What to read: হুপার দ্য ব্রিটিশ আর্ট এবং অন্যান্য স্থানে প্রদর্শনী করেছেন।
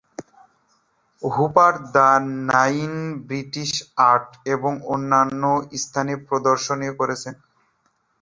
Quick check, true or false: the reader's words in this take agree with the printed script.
false